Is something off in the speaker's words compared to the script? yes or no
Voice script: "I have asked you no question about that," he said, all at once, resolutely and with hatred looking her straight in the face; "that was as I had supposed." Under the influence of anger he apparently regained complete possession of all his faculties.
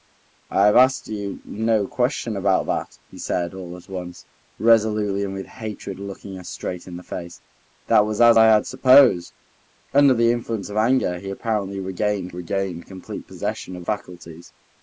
yes